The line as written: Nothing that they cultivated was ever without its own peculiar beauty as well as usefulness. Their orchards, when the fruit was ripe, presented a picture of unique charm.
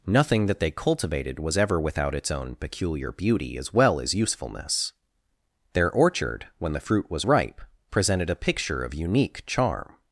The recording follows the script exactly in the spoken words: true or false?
false